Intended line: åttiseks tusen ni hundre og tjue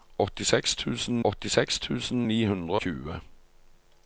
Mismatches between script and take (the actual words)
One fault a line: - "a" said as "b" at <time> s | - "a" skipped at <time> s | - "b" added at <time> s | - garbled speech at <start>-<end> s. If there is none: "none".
- "åttiseks tusen" added at 1.2 s
- "og" skipped at 2.8 s